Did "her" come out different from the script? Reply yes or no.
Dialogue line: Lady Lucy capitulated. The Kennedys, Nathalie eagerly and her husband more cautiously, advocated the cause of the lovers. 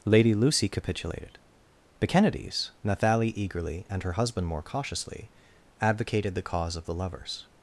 no